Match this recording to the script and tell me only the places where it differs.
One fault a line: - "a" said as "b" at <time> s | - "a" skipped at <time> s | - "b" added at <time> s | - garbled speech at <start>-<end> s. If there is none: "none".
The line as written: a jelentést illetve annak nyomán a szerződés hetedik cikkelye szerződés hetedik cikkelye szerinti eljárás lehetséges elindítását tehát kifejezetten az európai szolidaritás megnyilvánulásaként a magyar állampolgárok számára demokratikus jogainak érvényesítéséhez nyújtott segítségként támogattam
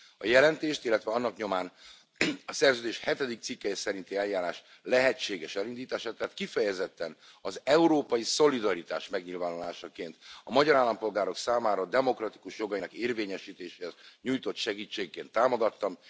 - "szerződés hetedik cikkelye" skipped at 3.8 s